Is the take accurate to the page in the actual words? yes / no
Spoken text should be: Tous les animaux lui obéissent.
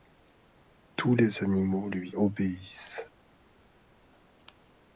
yes